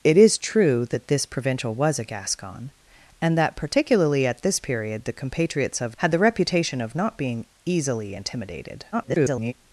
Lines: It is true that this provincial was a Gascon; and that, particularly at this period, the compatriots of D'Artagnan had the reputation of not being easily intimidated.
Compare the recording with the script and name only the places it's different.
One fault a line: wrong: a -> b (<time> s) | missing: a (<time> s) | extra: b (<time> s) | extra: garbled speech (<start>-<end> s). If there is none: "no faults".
missing: D'Artagnan (6.0 s)
extra: garbled speech (8.9-9.5 s)